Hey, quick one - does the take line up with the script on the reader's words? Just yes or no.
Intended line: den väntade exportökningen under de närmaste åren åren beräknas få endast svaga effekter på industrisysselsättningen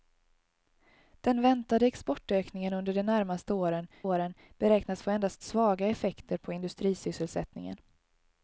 yes